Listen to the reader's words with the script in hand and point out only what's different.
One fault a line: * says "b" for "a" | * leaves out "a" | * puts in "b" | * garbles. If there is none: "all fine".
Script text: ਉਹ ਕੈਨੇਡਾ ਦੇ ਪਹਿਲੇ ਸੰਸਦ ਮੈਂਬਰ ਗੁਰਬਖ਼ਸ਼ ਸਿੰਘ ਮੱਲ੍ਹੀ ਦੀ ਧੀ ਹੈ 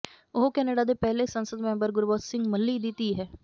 all fine